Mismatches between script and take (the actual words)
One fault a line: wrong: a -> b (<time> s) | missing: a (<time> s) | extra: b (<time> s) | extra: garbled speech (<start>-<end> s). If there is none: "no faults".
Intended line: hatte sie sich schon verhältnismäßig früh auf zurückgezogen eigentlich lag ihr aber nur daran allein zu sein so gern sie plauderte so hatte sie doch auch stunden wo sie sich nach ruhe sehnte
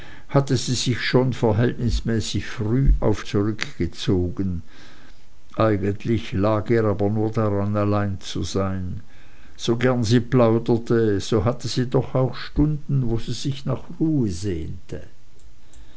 no faults